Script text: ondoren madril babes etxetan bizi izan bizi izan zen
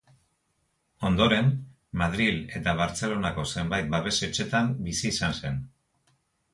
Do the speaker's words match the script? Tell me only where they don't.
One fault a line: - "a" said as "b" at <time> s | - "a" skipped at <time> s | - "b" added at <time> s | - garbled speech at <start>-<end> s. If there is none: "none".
- "eta bartzelonako zenbait" added at 2.6 s
- "bizi izan" skipped at 5.4 s